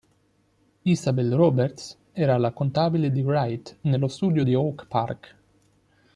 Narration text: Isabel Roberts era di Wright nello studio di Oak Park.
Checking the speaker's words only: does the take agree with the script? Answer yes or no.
no